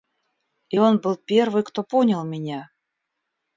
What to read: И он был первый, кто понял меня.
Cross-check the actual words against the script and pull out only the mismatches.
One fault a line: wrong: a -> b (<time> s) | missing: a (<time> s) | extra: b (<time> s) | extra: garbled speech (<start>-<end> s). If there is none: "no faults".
no faults